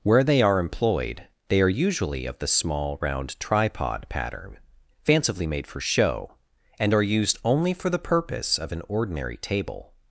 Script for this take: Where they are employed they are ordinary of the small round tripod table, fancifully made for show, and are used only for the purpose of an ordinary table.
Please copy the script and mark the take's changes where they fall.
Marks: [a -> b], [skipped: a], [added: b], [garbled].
Where they are employed they are [ordinary -> usually] of the small round tripod [table, -> pattern] fancifully made for show, and are used only for the purpose of an ordinary table.